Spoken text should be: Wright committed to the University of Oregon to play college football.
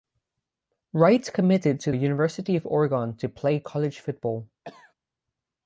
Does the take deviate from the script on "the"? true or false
true